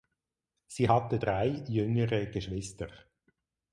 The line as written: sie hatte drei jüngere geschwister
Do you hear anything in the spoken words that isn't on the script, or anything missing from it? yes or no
no